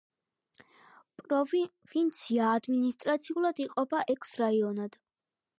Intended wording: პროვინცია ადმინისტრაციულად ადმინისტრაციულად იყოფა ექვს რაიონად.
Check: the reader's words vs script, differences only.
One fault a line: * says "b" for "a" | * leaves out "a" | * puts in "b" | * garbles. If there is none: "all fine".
* leaves out "ადმინისტრაციულად"